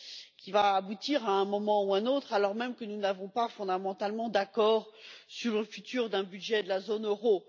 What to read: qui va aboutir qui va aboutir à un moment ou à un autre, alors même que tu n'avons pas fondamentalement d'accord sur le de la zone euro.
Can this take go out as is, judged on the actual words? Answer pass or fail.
fail